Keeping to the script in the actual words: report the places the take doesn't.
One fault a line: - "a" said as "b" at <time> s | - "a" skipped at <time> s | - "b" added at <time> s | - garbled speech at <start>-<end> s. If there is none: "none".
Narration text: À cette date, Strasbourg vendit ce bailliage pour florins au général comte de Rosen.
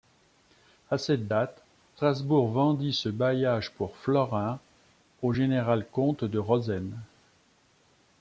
none